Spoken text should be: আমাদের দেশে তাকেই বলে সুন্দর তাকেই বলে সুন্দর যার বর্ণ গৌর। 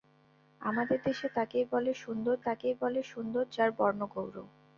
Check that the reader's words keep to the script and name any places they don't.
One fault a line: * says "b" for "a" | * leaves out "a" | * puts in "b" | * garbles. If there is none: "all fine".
all fine